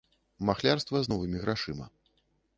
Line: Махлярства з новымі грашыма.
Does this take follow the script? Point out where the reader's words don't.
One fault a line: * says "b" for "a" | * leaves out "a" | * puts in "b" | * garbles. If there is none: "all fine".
all fine